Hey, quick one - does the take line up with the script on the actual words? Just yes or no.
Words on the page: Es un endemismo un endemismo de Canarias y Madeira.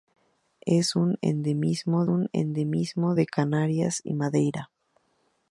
yes